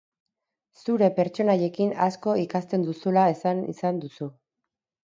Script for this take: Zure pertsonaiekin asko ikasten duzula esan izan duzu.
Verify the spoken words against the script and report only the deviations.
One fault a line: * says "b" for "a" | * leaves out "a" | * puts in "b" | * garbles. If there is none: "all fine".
all fine